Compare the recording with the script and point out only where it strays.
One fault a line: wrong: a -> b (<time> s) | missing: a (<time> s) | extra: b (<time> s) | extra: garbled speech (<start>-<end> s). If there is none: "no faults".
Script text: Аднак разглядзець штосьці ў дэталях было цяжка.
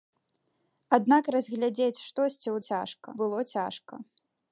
wrong: дэталях -> цяжка (2.7 s)